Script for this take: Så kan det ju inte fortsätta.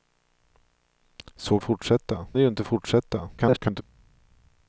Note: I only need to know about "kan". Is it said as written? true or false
false